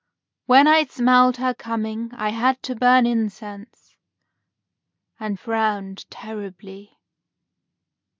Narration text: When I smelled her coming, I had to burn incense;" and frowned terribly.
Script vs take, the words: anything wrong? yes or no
no